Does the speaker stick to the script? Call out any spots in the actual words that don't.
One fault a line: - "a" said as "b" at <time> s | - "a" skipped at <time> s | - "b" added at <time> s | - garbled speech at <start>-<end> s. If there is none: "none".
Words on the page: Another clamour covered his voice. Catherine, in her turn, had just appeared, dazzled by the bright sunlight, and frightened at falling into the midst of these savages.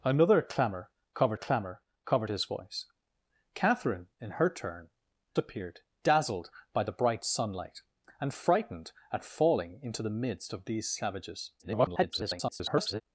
- "clamour covered" added at 1.3 s
- "had just" skipped at 4.9 s
- garbled speech at 11.6-13.0 s